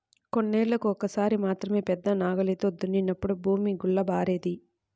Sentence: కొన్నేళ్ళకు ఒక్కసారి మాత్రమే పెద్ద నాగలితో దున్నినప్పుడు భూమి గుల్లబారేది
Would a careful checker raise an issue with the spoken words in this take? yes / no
no